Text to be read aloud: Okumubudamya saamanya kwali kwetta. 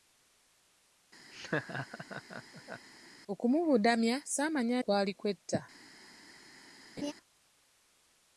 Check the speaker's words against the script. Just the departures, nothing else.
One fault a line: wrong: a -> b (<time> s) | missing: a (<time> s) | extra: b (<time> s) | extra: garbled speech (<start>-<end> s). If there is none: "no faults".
no faults